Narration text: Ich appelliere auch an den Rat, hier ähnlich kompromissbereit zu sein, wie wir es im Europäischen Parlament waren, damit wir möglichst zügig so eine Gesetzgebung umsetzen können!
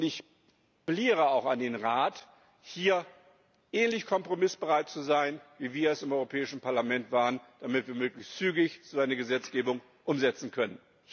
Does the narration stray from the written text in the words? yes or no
no